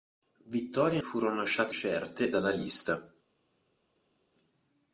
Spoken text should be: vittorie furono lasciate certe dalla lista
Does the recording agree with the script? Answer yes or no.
yes